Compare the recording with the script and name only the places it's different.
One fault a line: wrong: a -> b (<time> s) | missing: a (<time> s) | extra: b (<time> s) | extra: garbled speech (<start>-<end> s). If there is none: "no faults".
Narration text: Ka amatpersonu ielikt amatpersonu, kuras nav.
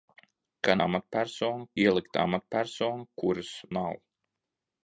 no faults